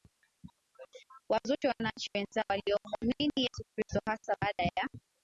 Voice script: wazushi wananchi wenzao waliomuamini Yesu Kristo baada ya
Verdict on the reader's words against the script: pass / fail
fail